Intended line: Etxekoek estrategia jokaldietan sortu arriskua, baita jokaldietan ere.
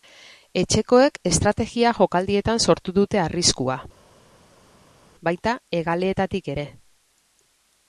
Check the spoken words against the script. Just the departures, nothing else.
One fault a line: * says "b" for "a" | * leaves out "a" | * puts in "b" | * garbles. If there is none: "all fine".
* puts in "dute"
* says "hegaleetatik" for "jokaldietan"